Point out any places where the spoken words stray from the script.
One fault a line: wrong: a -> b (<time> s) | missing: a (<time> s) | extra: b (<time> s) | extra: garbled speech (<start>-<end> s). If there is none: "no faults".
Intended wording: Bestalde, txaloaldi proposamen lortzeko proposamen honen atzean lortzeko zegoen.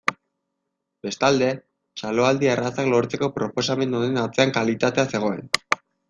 wrong: proposamen -> errazak (2.5 s)
wrong: lortzeko -> kalitatea (4.6 s)